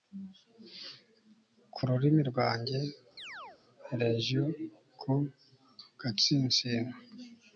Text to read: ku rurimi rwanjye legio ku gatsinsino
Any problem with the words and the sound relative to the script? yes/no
yes